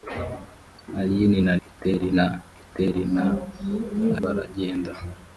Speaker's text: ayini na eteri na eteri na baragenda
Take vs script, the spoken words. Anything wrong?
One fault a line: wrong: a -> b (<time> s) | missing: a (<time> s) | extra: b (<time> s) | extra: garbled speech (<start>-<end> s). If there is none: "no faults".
no faults